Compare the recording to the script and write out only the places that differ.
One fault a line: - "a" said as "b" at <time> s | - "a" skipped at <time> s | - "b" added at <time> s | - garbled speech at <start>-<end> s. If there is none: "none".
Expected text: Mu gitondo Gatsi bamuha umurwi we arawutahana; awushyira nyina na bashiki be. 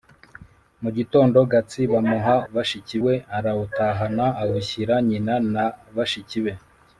- "umurwi" said as "bashiki" at 2.5 s